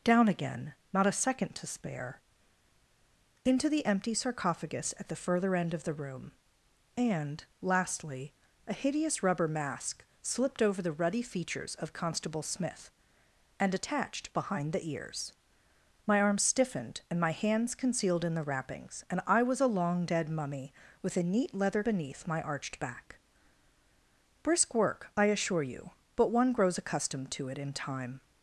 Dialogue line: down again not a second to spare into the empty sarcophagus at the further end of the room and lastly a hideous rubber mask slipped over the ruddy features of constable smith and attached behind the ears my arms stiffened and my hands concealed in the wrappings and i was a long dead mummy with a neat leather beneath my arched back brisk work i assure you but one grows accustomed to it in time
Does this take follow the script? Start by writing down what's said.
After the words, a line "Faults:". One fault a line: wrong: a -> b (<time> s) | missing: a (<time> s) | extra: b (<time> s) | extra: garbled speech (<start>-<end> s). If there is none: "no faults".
down again not a second to spare into the empty sarcophagus at the further end of the room and lastly a hideous rubber mask slipped over the ruddy features of constable smith and attached behind the ears my arms stiffened and my hands concealed in the wrappings and i was a long dead mummy with a neat leather beneath my arched back brisk work i assure you but one grows accustomed to it in time
Faults:
no faults